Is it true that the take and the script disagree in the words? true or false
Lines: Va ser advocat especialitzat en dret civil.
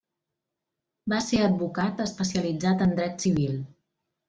false